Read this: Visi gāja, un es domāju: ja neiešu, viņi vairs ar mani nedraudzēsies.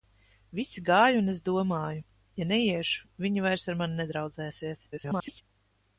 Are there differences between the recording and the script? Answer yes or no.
yes